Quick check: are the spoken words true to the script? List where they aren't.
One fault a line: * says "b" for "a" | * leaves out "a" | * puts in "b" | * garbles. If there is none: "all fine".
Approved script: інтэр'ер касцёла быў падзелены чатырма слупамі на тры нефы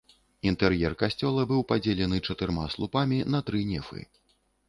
all fine